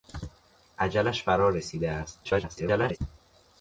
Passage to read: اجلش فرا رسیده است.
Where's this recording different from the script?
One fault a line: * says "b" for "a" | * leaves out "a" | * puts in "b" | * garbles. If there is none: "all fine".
* garbles